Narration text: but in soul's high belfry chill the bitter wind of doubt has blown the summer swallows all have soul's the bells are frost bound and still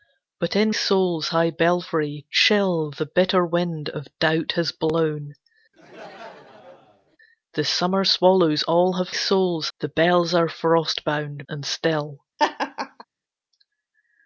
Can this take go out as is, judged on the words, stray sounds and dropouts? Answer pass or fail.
fail